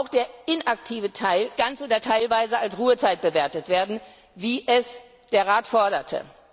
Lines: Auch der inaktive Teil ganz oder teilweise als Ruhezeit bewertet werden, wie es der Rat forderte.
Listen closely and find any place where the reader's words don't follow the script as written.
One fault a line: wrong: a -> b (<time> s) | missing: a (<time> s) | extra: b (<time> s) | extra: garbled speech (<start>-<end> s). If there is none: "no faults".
no faults